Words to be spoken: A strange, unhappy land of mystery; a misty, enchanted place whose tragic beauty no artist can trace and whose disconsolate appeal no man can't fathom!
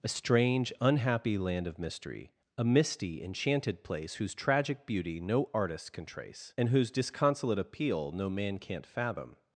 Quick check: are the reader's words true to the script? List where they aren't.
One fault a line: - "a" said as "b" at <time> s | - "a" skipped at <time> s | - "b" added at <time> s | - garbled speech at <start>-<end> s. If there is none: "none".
none